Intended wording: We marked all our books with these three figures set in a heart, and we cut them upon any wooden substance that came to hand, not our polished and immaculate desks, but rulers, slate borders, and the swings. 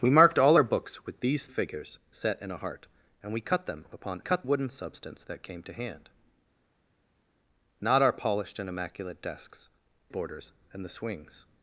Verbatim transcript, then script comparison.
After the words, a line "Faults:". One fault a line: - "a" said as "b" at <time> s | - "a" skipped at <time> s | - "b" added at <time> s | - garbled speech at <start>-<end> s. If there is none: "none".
We marked all our books with these figures set in a heart, and we cut them upon cut wooden substance that came to hand, not our polished and immaculate desks, borders, and the swings.
Faults:
- "three" skipped at 1.5 s
- "any" said as "cut" at 4.2 s
- "but rulers slate" skipped at 9.7 s